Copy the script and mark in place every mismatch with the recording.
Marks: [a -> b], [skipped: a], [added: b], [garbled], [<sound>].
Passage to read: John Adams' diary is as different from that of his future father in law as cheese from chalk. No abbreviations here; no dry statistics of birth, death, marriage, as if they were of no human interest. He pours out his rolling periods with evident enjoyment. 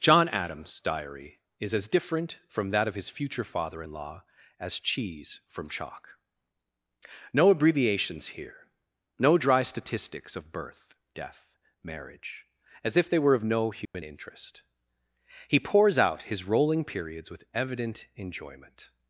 John Adams' diary is as different from that of his future father in law as cheese from chalk. No abbreviations here; no dry statistics of birth, death, marriage, as if they were of no human [dropout] interest. He pours out his rolling periods with evident enjoyment.